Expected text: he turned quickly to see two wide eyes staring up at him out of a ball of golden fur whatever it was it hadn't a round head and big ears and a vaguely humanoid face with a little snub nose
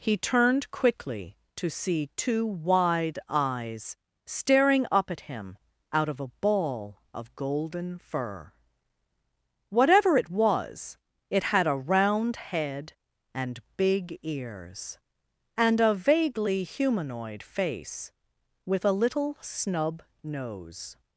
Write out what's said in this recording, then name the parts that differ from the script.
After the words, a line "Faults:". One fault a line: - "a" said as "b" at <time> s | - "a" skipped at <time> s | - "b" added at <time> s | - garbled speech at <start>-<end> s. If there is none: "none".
he turned quickly to see two wide eyes staring up at him out of a ball of golden fur whatever it was it had a round head and big ears and a vaguely humanoid face with a little snub nose
Faults:
- "hadn't" said as "had" at 11.5 s